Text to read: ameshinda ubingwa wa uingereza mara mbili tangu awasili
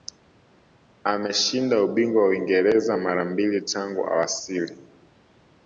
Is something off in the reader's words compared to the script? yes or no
no